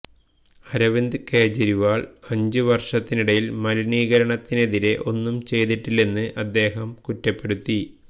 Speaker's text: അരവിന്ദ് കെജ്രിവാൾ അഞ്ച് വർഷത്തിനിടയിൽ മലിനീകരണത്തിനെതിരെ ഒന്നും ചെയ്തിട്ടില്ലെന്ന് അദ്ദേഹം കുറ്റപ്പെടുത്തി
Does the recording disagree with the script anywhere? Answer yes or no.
no